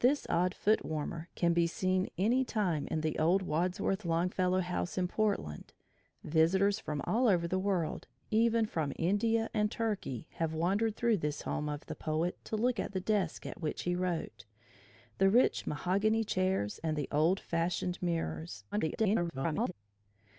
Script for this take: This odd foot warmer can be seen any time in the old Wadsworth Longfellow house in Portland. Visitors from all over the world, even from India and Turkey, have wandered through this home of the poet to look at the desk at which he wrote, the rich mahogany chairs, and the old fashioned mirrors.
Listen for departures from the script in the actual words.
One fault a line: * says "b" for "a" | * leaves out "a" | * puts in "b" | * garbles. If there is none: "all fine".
* garbles